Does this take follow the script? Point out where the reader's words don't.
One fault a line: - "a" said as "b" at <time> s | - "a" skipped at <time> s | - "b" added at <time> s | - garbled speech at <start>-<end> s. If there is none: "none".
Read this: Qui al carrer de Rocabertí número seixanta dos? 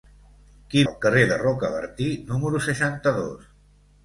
none